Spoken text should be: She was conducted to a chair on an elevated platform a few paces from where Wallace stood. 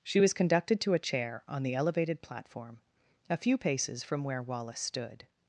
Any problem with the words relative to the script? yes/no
yes